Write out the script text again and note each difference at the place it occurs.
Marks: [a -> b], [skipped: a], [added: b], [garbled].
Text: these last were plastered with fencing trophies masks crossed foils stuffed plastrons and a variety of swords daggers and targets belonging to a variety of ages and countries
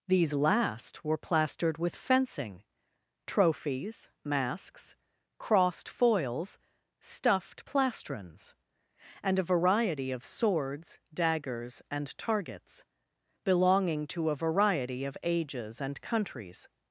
these last were plastered with fencing trophies masks crossed foils stuffed plastrons and a variety of swords daggers and targets belonging to a variety of ages and countries